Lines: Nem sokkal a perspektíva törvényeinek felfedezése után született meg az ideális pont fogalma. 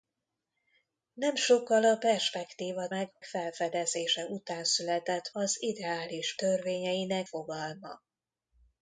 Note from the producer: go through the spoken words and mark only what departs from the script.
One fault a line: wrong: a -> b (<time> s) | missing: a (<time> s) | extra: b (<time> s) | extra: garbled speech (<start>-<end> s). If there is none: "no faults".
wrong: törvényeinek -> meg (2.9 s)
missing: meg (5.3 s)
wrong: pont -> törvényeinek (6.3 s)